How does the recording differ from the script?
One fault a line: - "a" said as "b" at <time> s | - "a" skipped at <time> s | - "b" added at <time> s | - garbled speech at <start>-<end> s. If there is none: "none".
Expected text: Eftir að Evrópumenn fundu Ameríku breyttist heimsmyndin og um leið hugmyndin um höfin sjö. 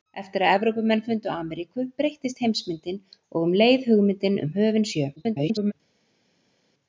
- garbled speech at 5.2-5.7 s